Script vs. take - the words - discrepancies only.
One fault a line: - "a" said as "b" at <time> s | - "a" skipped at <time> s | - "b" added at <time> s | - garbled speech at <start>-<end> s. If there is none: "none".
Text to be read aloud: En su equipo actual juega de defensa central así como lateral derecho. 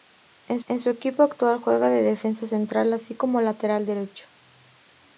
- "en" added at 0.7 s